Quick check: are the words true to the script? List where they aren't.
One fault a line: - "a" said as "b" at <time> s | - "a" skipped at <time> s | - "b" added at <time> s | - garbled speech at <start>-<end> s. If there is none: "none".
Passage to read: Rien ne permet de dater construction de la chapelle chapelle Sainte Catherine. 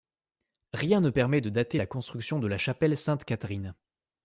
- "la" added at 1.7 s
- "chapelle" skipped at 2.9 s